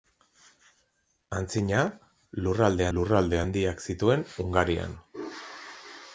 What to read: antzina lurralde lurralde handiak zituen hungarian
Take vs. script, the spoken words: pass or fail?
pass